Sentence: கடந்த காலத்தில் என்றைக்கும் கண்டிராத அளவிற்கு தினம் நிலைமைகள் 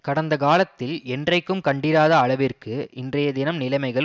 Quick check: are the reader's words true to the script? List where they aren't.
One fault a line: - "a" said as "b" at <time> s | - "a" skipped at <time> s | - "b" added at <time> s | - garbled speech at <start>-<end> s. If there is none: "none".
- "இன்றைய" added at 2.9 s